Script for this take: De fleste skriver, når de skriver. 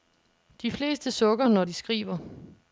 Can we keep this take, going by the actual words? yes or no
no